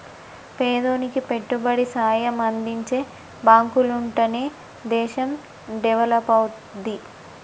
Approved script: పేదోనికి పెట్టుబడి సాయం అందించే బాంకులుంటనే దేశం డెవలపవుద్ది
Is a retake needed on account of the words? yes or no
no